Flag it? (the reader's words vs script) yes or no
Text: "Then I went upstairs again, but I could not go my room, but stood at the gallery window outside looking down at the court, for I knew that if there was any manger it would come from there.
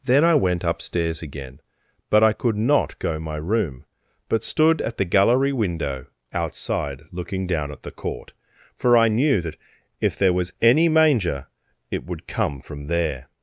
no